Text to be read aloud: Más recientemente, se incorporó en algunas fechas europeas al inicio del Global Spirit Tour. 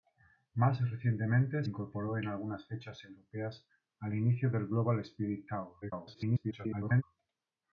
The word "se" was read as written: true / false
false